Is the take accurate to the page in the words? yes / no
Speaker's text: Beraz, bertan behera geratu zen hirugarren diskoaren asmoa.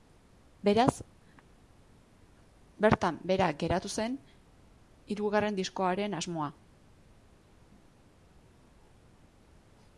yes